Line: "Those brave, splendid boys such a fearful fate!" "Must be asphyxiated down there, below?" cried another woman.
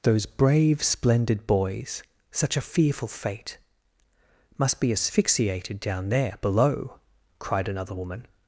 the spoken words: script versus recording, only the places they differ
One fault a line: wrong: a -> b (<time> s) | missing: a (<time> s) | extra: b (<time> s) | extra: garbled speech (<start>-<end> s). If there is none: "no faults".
no faults